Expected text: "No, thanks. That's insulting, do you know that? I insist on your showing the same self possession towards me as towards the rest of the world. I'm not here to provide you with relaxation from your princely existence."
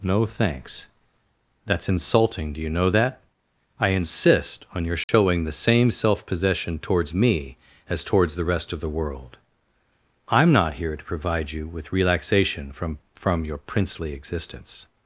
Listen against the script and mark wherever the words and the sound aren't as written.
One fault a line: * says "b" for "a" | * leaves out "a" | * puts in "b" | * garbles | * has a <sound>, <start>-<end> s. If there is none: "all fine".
* has a dropout, 5.0-5.1 s
* puts in "from"